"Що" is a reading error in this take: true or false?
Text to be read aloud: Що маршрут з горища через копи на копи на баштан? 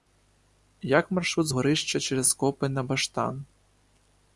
true